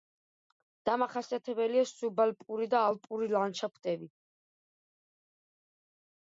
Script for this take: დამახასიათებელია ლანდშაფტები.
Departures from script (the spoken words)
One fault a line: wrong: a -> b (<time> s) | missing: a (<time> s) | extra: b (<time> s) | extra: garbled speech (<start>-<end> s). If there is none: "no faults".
extra: სუბალპური და ალპური (1.9 s)